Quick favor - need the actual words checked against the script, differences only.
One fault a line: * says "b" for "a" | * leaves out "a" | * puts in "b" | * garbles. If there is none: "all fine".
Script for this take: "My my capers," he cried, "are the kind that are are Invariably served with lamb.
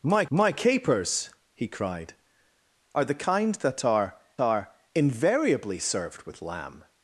all fine